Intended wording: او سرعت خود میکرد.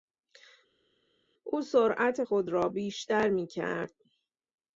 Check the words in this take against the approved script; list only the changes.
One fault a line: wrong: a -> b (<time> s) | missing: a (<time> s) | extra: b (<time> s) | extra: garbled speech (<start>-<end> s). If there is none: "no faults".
extra: را بیشتر (2.5 s)